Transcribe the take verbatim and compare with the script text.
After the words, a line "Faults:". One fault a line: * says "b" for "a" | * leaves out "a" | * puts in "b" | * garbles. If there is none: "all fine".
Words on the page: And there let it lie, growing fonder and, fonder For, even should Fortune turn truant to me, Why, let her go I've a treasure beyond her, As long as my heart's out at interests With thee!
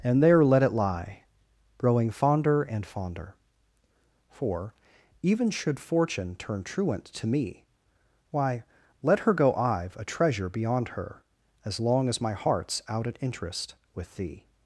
And there let it lie, growing fonder and, fonder For, even should Fortune turn truant to me, Why, let her go I've a treasure beyond her, As long as my heart's out at interest With thee!
Faults:
* says "interest" for "interests"